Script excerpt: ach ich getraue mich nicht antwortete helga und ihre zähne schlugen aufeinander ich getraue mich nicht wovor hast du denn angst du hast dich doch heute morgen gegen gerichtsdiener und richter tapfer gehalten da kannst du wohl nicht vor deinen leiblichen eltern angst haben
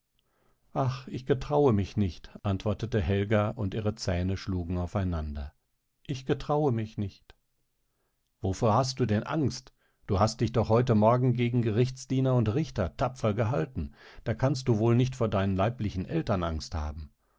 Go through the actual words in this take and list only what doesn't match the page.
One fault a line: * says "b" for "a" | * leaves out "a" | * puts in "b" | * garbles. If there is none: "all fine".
all fine